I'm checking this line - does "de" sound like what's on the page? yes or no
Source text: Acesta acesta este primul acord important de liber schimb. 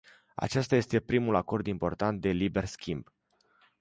yes